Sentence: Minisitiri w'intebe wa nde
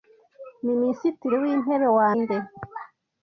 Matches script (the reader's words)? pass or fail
pass